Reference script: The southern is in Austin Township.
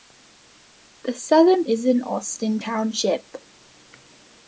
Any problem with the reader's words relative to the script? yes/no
no